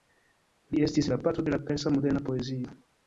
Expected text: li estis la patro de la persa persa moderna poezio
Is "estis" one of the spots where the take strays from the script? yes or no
no